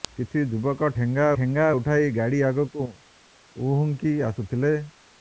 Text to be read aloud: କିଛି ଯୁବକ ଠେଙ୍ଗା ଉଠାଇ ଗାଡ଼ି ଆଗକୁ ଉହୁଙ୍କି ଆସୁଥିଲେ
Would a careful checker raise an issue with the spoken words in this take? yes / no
yes